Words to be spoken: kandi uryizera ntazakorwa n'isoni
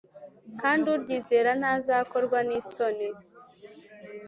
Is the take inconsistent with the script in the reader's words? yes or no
no